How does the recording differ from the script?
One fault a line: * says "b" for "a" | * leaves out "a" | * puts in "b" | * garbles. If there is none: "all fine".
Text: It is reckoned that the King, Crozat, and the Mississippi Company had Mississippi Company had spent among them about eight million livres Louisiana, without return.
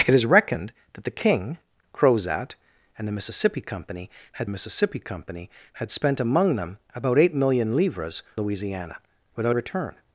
all fine